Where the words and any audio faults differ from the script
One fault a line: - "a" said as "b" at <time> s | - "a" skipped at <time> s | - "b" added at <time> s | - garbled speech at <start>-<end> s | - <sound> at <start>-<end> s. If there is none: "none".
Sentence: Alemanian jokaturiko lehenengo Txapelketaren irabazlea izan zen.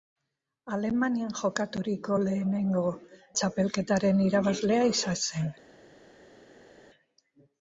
none